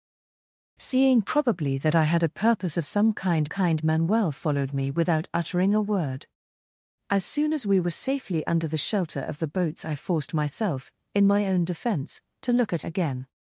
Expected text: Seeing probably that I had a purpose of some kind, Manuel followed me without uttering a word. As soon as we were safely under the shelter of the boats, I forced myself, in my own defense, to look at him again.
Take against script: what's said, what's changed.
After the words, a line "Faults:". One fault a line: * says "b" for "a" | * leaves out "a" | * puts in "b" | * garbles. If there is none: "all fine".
Seeing probably that I had a purpose of some kind kind, Manuel followed me without uttering a word. As soon as we were safely under the shelter of the boats, I forced myself, in my own defense, to look at again.
Faults:
* puts in "kind"
* leaves out "him"